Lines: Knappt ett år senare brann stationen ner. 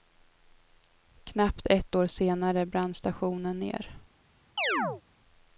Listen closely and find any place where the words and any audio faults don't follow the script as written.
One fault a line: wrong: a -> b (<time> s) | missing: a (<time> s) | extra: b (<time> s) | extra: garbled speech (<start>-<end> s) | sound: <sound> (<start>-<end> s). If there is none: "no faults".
sound: chirp (4.6-5.0 s)